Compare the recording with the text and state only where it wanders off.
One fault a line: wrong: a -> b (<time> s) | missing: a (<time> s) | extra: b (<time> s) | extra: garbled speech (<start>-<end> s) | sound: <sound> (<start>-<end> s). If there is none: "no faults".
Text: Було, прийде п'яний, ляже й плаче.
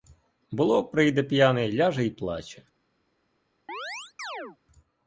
sound: chirp (3.7-4.6 s)